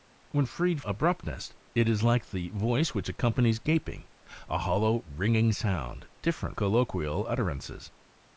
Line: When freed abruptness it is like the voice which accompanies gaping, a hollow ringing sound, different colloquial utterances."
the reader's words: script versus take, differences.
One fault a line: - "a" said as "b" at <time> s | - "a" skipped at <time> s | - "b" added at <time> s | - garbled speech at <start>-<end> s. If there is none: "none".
none